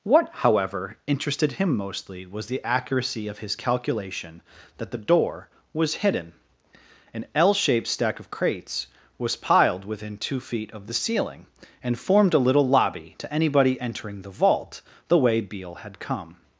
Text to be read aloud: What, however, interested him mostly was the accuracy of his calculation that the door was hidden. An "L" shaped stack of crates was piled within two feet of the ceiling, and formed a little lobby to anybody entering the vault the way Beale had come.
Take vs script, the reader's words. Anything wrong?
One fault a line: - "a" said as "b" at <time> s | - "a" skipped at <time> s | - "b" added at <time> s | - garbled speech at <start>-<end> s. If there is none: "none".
none